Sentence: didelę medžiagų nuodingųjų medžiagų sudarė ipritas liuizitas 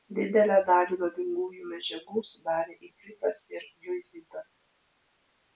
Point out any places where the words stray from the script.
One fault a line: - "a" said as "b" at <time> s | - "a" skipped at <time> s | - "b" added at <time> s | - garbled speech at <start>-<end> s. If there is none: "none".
- "medžiagų" said as "dalį" at 0.7 s
- "ir" added at 3.6 s